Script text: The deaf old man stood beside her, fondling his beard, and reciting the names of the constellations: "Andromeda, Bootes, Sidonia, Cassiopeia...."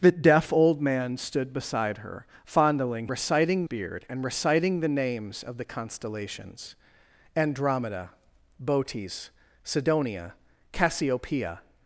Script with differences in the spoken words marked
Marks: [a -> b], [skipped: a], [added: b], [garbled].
The deaf old man stood beside her, fondling [his -> reciting] beard, and reciting the names of the constellations: "Andromeda, Bootes, Sidonia, Cassiopeia...."